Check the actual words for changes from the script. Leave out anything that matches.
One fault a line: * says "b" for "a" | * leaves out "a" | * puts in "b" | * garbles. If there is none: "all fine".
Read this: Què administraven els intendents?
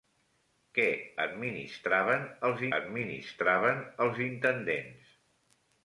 * puts in "administraven els"